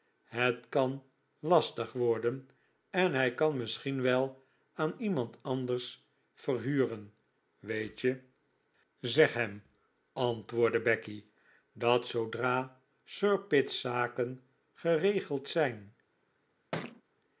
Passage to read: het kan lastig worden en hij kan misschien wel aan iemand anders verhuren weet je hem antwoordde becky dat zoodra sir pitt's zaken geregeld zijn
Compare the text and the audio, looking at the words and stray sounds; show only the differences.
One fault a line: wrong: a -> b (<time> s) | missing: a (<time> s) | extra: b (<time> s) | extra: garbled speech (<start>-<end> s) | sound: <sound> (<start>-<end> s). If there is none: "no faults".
extra: zeg (9.0 s)
sound: thud (16.7-17.0 s)